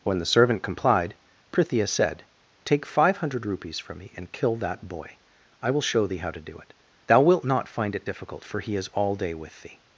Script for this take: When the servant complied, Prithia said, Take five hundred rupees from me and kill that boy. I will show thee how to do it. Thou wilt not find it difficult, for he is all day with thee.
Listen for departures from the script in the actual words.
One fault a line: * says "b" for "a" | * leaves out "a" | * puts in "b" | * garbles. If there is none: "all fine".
all fine